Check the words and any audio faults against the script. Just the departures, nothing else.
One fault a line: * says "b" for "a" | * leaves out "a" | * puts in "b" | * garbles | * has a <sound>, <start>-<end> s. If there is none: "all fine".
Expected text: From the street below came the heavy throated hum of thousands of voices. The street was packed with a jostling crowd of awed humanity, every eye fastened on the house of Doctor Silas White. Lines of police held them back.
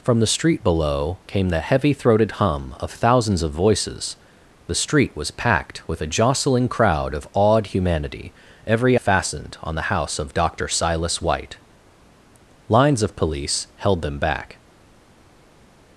* leaves out "eye"